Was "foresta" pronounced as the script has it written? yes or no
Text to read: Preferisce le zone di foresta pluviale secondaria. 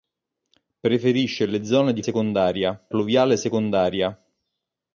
no